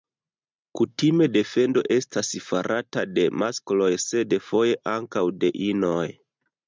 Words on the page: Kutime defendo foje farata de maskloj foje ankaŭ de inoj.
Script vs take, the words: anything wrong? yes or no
yes